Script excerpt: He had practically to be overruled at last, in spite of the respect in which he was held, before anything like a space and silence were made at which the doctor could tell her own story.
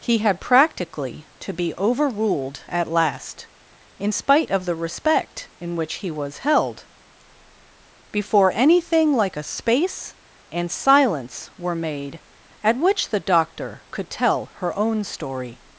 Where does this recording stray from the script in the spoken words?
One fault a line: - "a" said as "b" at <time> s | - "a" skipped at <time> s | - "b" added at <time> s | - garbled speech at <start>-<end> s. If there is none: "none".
none